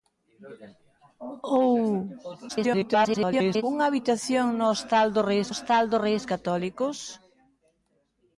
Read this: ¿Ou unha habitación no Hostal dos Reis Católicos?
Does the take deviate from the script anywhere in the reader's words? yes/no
yes